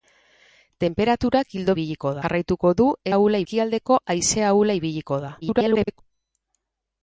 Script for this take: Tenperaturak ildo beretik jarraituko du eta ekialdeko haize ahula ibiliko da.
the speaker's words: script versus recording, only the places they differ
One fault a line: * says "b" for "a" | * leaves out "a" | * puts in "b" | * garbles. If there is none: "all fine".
* says "ibiliko" for "beretik"
* says "ahula" for "eta"
* garbles